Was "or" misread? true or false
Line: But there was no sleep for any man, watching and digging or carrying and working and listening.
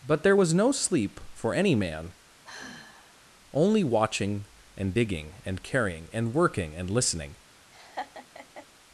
true